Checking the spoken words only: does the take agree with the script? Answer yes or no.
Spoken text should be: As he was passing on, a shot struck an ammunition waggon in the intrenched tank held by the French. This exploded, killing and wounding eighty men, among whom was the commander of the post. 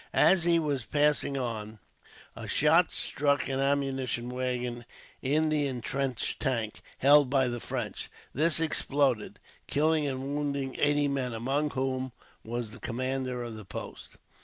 yes